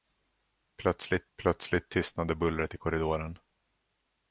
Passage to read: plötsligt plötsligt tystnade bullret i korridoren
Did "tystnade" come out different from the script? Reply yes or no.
no